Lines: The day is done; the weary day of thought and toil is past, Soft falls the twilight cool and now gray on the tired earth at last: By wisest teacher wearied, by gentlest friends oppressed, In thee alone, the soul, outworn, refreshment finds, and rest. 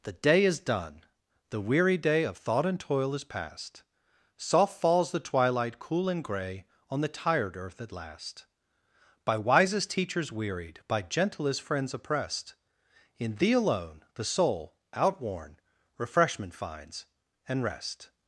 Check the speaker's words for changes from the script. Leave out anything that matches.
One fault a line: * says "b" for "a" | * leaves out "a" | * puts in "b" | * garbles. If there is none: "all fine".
* leaves out "now"
* says "teachers" for "teacher"